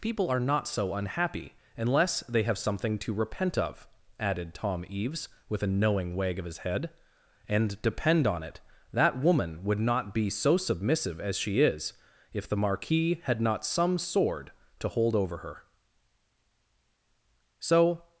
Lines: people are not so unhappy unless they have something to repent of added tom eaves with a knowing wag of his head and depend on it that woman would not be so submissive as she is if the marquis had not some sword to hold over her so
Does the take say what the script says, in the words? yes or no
yes